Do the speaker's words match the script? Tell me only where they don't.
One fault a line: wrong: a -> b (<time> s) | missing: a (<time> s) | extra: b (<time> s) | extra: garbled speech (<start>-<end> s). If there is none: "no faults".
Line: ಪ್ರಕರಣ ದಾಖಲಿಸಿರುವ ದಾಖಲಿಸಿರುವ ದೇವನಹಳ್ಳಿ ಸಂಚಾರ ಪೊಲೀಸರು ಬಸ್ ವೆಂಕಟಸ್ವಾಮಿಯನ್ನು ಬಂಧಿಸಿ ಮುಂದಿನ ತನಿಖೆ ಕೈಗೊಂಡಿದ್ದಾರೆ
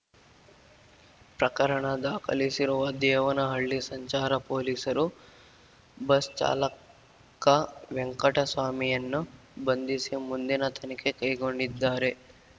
missing: ದಾಖಲಿಸಿರುವ (2.9 s)
extra: ಚಾಲಕ (6.4 s)